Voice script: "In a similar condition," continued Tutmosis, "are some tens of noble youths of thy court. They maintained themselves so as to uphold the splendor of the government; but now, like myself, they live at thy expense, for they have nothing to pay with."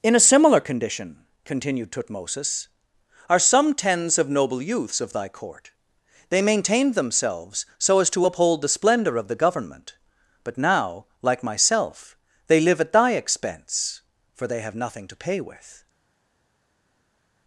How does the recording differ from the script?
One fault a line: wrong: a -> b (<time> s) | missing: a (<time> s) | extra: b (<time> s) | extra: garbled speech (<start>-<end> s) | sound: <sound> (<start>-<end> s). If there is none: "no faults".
no faults